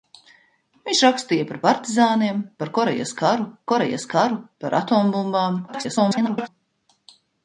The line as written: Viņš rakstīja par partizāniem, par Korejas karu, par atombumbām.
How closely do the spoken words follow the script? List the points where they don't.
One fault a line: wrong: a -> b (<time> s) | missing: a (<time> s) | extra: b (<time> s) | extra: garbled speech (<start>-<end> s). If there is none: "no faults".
extra: Korejas karu (3.7 s)
extra: garbled speech (5.7-6.5 s)